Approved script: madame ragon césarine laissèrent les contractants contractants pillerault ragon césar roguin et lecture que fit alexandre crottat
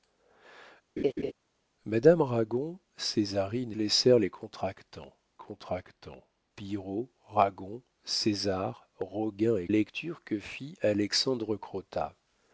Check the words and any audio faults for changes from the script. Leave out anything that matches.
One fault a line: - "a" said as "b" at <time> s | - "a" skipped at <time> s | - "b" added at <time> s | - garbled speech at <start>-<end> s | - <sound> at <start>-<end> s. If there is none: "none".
- laugh at 1.0-1.3 s